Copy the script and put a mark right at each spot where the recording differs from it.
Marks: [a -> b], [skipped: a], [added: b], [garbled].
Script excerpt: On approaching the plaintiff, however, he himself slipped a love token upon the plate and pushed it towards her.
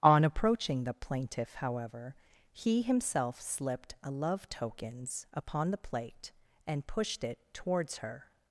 On approaching the plaintiff, however, he himself slipped a love [token -> tokens] upon the plate and pushed it towards her.